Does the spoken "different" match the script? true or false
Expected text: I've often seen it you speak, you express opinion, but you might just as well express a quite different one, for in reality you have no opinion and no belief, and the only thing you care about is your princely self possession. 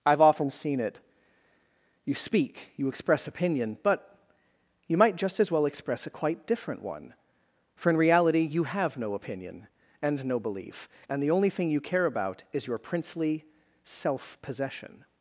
true